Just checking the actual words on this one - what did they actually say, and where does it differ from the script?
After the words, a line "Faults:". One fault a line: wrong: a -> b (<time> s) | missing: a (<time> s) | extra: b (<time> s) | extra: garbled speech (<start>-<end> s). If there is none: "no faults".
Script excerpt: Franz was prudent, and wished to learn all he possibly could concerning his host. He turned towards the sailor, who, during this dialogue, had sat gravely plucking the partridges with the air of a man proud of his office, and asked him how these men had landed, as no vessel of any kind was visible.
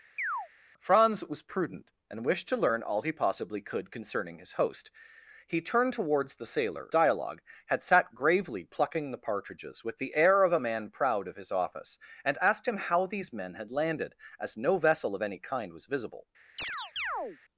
Franz was prudent, and wished to learn all he possibly could concerning his host. He turned towards the sailor, dialogue, had sat gravely plucking the partridges with the air of a man proud of his office, and asked him how these men had landed, as no vessel of any kind was visible.
Faults:
missing: who during this (6.9 s)